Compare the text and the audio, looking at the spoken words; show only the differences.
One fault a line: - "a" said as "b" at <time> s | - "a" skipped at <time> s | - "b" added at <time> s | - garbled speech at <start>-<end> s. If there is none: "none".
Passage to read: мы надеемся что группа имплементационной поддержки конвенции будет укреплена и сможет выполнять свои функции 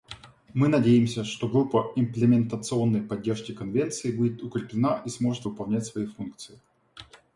none